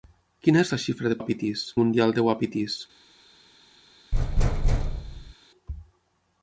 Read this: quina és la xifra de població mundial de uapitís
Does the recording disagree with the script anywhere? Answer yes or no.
yes